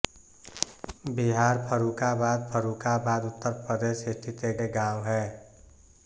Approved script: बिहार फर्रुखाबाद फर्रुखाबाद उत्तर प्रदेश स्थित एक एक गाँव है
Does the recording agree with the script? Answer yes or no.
yes